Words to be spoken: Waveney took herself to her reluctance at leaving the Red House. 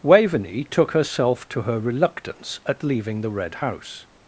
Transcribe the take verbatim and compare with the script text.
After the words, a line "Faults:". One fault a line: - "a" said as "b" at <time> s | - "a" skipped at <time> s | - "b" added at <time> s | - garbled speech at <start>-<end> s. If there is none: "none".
Waveney took herself to her reluctance at leaving the Red House.
Faults:
none